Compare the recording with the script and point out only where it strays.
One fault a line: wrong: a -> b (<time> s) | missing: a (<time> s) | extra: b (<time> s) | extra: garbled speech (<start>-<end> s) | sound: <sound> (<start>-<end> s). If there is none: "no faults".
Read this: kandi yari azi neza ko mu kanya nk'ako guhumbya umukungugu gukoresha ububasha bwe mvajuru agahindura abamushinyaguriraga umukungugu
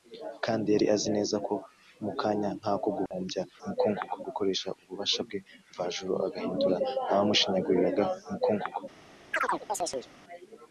sound: dropout (3.1-3.1 s)
sound: chirp (9.3-10.1 s)